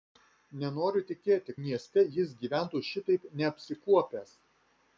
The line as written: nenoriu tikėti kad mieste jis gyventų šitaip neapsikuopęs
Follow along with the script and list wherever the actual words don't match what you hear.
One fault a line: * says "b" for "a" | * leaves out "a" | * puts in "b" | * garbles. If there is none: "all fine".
* leaves out "kad"